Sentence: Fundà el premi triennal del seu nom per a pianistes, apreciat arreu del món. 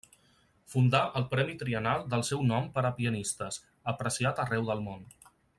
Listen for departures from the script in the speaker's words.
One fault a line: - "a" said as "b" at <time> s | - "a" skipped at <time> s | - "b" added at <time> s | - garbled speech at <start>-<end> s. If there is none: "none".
none